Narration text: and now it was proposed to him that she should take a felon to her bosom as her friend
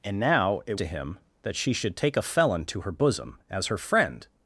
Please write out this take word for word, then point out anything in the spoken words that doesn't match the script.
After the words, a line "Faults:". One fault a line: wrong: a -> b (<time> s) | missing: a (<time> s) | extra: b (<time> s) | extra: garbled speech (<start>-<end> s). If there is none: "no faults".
and now it to him that she should take a felon to her bosom as her friend
Faults:
missing: was proposed (0.8 s)